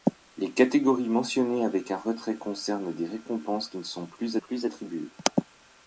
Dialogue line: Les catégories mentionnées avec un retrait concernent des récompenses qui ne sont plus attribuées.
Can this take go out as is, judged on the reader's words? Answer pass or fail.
fail